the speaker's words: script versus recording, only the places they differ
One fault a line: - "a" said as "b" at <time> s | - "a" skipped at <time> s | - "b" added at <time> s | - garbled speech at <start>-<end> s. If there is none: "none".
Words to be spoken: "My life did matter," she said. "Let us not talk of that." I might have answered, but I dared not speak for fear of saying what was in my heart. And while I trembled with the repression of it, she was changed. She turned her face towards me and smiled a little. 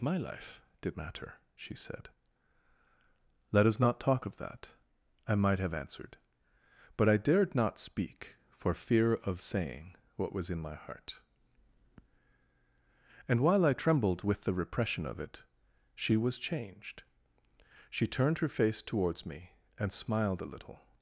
none